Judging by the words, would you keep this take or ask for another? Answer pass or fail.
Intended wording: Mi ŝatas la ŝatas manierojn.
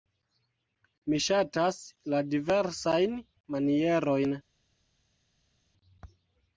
fail